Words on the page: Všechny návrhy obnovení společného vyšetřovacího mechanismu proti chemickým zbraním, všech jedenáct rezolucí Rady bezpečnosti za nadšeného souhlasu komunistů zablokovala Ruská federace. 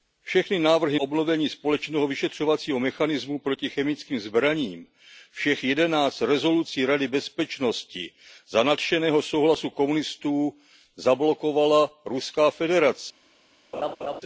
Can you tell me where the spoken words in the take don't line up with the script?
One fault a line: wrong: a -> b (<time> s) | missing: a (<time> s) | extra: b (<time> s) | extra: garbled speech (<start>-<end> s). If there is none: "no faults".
no faults